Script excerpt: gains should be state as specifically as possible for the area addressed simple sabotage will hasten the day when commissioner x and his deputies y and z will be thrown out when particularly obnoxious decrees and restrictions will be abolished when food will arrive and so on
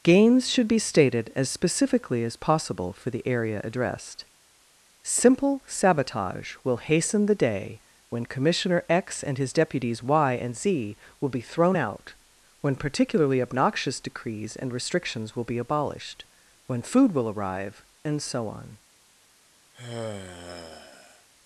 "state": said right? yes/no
no